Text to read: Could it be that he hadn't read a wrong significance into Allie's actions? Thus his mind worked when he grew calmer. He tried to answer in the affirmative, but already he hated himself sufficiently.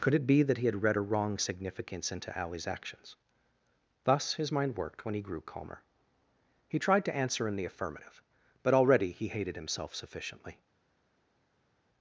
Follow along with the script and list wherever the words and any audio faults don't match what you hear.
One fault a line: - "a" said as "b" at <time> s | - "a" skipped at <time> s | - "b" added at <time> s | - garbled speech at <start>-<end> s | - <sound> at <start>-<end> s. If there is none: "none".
- "hadn't" said as "had" at 0.7 s